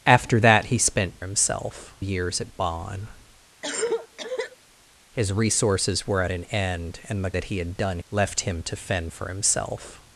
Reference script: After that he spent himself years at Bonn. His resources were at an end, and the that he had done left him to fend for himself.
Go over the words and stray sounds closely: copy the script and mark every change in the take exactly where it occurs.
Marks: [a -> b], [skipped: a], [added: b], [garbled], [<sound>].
After that he spent himself years at Bonn. [cough] His resources were at an end, and the that he had done left him to fend for himself.